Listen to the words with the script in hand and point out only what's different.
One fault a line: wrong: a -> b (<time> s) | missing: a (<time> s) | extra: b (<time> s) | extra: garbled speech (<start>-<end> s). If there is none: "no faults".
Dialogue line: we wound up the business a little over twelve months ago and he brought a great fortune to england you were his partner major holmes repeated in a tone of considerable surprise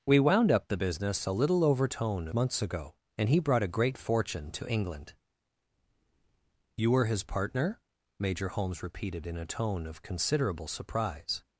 wrong: twelve -> tone (1.9 s)